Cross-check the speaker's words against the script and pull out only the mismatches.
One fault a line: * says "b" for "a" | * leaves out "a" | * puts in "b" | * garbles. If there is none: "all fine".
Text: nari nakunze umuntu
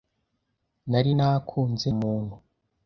all fine